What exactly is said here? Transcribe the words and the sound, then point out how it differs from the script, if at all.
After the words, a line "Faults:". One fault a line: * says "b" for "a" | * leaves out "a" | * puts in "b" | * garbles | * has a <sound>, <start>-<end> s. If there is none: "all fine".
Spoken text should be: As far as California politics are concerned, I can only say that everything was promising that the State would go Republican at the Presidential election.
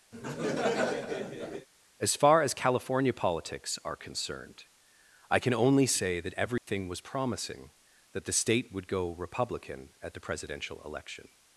As far as California politics are concerned, I can only say that everything was promising that the State would go Republican at the Presidential election.
Faults:
* has a laugh, 0.1-1.7 s
* has a dropout, 6.6-6.7 s